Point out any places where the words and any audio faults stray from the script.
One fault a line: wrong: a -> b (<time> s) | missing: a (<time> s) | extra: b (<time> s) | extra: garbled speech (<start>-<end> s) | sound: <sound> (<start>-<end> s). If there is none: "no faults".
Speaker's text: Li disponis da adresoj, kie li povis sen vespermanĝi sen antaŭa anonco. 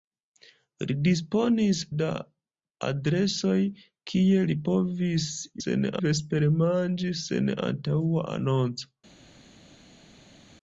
no faults